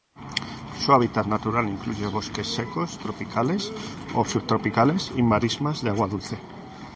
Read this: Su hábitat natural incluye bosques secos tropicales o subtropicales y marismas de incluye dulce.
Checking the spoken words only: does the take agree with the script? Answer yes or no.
no